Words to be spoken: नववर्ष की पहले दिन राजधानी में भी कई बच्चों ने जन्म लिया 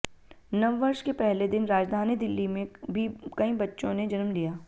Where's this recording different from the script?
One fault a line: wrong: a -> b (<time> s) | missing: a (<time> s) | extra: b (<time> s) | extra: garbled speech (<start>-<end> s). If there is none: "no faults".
wrong: की -> के (1.0 s)
extra: दिल्ली (2.1 s)